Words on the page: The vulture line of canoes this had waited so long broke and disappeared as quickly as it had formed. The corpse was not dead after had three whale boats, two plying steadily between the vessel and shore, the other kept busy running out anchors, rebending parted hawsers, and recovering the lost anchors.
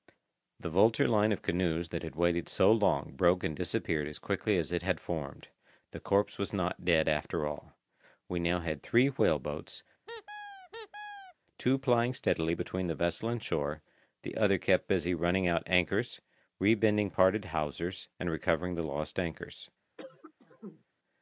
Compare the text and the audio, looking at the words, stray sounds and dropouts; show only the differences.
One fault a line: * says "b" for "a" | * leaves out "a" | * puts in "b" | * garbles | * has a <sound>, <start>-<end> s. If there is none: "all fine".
* says "that" for "this"
* puts in "all We now"
* has a squeak, 10.1-11.3 s
* has a cough, 20.0-20.8 s